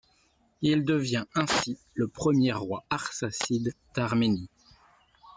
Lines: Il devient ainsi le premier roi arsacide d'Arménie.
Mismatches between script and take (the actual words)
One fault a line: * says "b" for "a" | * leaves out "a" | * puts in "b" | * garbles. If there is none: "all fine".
all fine